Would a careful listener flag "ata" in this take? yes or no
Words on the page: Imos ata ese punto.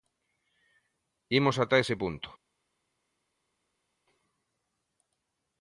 no